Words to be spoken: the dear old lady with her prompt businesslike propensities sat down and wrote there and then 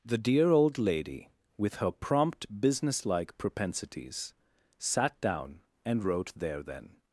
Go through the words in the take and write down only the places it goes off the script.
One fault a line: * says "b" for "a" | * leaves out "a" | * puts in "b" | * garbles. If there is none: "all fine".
* leaves out "and"